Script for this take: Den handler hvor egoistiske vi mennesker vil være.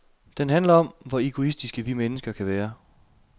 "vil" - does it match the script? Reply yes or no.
no